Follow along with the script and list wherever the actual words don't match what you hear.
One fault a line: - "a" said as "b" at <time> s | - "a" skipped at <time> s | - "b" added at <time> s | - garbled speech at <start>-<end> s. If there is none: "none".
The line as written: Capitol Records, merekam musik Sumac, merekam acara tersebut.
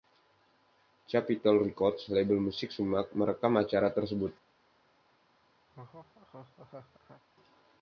- "merekam" said as "label" at 2.1 s